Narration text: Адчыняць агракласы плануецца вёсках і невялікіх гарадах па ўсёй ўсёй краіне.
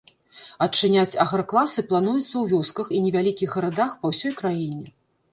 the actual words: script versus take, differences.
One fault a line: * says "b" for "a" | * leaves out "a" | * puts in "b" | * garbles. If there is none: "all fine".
* puts in "ў"
* leaves out "ўсёй"